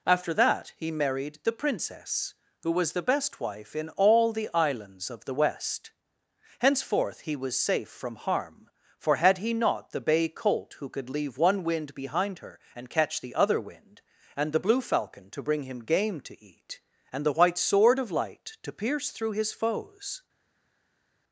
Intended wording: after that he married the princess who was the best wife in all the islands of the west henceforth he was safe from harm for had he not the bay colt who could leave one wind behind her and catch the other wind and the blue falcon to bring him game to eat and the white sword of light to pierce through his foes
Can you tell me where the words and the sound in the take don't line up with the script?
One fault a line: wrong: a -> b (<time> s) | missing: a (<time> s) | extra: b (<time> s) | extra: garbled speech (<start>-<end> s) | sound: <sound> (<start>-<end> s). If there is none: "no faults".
no faults